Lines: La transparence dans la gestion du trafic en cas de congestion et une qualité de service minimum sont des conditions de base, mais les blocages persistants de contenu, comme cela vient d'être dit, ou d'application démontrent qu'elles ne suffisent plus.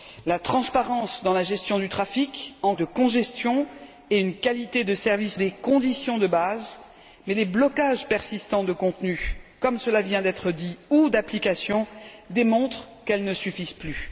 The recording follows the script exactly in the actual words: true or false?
false